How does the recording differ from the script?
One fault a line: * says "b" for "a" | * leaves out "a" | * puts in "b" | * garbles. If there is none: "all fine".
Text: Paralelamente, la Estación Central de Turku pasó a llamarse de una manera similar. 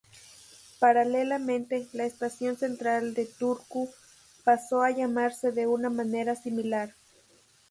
all fine